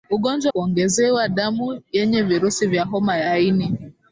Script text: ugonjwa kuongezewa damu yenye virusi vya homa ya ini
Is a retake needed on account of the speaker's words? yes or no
no